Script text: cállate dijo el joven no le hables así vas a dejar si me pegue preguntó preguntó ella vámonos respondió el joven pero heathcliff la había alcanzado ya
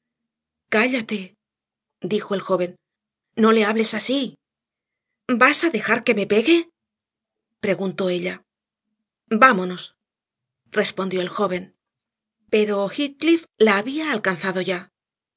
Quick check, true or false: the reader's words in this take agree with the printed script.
false